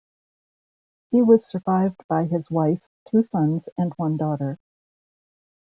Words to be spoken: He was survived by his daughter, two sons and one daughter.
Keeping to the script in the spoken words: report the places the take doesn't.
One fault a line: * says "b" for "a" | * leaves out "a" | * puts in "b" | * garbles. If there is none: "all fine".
* says "wife" for "daughter"